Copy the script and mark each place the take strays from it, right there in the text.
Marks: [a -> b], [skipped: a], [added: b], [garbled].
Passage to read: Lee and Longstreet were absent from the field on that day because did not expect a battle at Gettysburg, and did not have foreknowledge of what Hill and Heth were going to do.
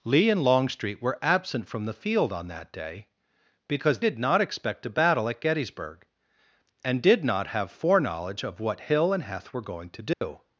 Lee and Longstreet were absent from the field on that day because did not expect a battle at Gettysburg, and did not have foreknowledge of what Hill and Heth were going to do.